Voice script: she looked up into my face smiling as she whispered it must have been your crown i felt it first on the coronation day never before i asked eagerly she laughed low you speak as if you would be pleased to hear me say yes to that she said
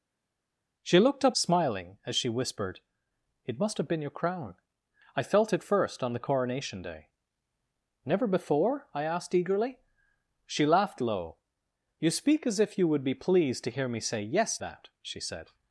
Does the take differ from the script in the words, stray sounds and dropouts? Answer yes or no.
yes